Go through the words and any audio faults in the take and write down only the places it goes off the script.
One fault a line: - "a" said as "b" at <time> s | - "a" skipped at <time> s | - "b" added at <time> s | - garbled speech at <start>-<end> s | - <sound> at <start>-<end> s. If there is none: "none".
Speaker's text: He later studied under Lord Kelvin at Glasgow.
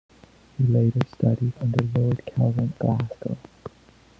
- "at" skipped at 2.7 s